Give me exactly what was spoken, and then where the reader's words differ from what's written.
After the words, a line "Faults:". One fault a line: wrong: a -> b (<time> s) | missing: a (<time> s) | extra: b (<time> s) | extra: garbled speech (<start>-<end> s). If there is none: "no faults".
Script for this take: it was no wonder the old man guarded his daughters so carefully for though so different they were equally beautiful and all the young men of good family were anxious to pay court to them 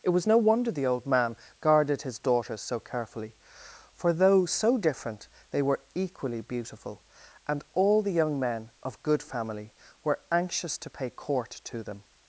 it was no wonder the old man guarded his daughters so carefully for though so different they were equally beautiful and all the young men of good family were anxious to pay court to them
Faults:
no faults